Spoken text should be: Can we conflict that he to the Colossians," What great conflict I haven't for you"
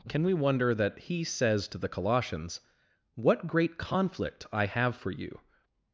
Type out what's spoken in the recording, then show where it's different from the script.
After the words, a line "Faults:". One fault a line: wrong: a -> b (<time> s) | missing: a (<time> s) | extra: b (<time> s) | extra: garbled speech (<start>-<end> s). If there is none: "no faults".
Can we wonder that he says to the Colossians," What great conflict I have for you"
Faults:
wrong: conflict -> wonder (0.3 s)
extra: says (1.2 s)
wrong: haven't -> have (4.7 s)